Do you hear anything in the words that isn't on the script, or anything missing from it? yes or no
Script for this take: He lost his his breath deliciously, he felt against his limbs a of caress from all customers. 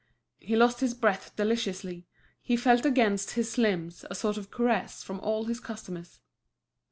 yes